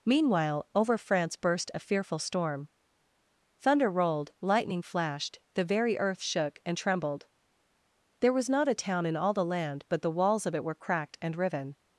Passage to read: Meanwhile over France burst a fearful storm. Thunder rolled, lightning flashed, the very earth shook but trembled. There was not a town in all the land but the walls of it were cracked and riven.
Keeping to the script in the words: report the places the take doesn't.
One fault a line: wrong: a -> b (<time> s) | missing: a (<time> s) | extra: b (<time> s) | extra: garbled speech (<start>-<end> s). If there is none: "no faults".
wrong: but -> and (6.7 s)